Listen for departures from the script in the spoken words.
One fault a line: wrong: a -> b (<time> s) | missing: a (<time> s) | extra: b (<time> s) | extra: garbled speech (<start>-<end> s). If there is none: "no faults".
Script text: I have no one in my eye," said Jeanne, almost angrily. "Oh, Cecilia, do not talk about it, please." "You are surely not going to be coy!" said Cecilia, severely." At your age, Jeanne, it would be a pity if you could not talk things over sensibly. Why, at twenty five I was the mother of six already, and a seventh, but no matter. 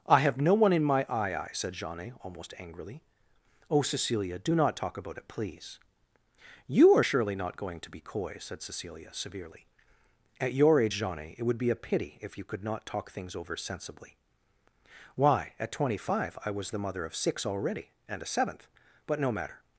extra: eye (1.4 s)